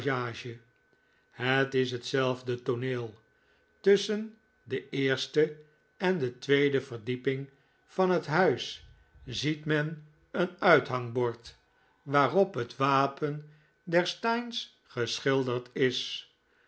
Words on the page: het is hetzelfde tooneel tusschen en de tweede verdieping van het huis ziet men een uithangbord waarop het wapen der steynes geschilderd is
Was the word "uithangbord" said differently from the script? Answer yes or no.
no